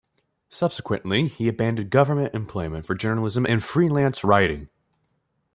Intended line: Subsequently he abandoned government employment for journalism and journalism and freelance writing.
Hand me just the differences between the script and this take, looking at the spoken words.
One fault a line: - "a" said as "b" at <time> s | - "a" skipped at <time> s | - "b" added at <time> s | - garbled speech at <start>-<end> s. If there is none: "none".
- "journalism and" skipped at 3.6 s